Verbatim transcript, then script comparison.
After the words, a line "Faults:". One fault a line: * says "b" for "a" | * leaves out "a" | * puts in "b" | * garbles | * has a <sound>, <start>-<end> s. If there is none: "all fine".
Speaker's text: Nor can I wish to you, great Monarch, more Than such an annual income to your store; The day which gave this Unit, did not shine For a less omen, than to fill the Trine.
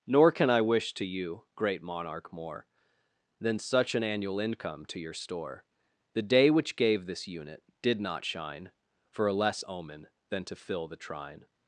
Nor can I wish to you, great Monarch, more Than such an annual income to your store; The day which gave this Unit, did not shine For a less omen, than to fill the Trine.
Faults:
all fine